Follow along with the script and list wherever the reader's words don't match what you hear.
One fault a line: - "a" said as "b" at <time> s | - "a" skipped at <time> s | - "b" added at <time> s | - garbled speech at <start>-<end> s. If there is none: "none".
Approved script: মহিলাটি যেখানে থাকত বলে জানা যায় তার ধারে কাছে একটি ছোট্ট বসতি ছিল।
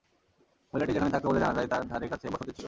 - "একটি ছোট্ট" skipped at 2.3 s